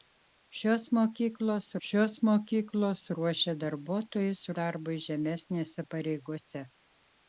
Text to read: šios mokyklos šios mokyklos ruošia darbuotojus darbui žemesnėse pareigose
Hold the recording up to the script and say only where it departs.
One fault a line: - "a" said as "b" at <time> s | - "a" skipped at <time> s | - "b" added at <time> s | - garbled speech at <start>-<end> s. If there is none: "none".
none